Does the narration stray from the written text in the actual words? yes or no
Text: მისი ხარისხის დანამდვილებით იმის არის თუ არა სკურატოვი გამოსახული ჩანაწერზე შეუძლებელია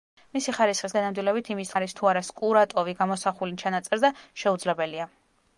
no